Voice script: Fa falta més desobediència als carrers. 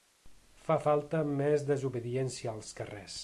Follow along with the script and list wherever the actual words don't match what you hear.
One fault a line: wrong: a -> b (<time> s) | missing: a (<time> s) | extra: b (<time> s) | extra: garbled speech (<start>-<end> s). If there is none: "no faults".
no faults